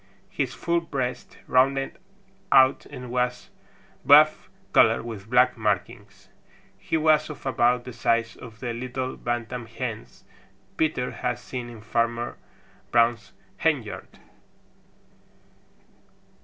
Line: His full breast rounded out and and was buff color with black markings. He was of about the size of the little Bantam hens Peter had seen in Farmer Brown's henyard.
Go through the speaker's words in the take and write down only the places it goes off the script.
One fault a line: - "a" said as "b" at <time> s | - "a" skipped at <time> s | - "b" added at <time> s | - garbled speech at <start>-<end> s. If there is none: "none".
- "and" skipped at 3.1 s